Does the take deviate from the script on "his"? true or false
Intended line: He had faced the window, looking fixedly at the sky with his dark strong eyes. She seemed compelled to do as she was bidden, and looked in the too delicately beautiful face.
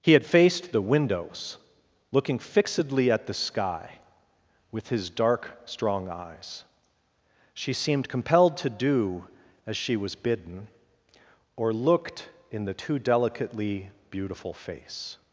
false